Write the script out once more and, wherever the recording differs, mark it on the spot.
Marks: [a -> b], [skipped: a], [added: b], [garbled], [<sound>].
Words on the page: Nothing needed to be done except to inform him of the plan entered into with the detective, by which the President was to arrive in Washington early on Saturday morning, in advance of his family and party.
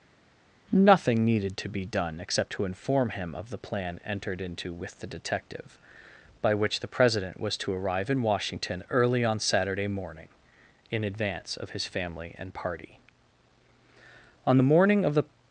Nothing needed to be done except to inform him of the plan entered into with the detective, by which the President was to arrive in Washington early on Saturday morning, in advance of his family and party. [added: On the morning of the]